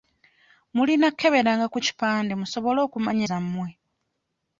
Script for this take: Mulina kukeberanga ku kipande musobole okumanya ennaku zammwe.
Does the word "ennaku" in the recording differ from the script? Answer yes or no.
yes